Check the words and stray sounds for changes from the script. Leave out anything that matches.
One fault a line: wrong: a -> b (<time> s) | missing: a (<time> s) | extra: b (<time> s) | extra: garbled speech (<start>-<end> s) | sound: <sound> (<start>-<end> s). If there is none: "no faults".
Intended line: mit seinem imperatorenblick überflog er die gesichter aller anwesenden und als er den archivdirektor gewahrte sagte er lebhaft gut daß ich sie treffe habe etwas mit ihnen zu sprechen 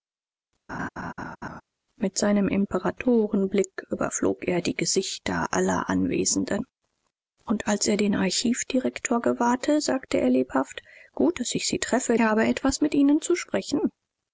sound: laugh (0.7-1.6 s)